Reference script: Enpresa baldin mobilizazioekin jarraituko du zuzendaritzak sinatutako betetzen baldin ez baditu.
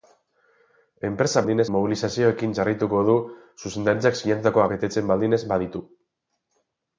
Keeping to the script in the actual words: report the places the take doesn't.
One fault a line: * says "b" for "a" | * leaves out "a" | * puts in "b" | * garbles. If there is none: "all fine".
all fine